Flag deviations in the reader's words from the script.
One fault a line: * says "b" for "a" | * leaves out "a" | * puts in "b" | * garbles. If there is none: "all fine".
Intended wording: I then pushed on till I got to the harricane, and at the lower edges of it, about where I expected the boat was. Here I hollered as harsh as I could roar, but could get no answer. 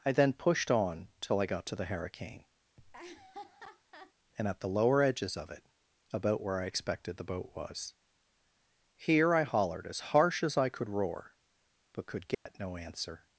all fine